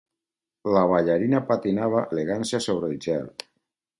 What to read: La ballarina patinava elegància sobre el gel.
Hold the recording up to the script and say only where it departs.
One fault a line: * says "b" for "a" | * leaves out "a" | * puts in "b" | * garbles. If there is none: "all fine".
all fine